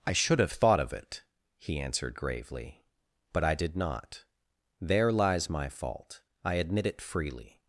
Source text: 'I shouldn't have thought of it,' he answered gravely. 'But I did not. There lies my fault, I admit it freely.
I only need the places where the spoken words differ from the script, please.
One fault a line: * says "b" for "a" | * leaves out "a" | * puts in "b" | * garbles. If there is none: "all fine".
* says "should" for "shouldn't"